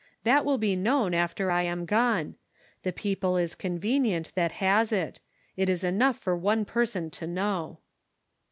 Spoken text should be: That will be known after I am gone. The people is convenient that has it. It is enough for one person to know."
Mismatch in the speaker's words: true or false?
false